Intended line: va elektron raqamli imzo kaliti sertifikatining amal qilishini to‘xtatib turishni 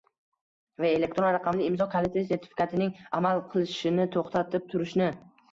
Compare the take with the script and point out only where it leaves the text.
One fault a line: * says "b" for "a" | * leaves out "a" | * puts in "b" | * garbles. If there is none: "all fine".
all fine